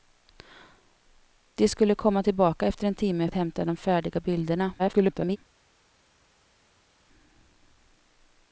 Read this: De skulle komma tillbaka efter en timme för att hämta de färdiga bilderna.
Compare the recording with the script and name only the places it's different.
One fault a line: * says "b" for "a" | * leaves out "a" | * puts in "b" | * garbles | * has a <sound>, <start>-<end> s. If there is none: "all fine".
* leaves out "för"
* garbles